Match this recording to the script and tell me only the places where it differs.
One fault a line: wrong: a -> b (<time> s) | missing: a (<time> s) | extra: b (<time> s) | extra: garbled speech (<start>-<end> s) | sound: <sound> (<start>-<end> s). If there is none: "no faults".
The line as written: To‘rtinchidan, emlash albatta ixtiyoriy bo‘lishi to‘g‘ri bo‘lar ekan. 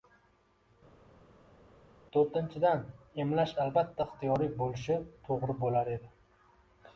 wrong: ekan -> edi (5.9 s)